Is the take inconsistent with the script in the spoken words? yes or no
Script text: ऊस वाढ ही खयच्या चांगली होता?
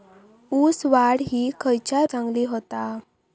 no